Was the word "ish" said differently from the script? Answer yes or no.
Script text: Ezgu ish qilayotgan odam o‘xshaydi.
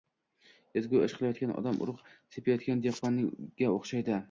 no